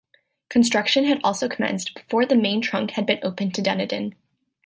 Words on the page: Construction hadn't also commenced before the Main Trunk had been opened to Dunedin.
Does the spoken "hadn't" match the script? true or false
false